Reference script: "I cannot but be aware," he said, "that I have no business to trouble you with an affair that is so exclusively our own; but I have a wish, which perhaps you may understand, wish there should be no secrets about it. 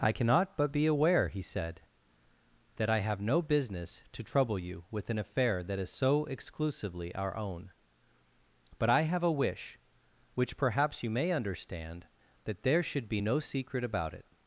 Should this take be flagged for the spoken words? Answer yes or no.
yes